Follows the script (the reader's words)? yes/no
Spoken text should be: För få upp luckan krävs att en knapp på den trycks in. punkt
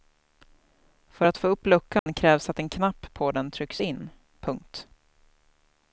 no